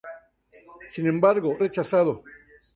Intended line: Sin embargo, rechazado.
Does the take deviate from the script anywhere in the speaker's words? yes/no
no